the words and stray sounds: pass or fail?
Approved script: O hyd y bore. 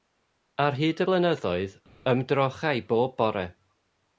fail